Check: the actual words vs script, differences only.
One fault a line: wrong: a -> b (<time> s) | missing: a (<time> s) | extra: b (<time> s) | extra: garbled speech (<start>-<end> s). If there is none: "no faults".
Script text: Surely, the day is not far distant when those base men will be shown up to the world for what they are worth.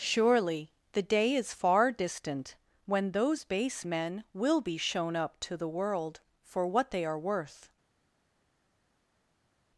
missing: not (1.5 s)